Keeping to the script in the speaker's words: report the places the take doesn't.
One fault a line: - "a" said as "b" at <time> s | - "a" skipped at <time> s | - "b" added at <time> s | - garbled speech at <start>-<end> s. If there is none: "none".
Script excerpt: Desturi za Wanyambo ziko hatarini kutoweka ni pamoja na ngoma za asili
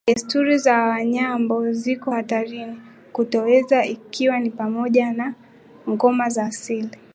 - "ikiwa" added at 3.9 s